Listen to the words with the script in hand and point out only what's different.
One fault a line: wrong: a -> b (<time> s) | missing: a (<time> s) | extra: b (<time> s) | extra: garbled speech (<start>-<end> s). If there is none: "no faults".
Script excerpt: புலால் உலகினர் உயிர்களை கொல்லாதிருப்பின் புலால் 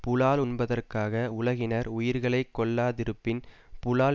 extra: உண்பதற்காக (0.4 s)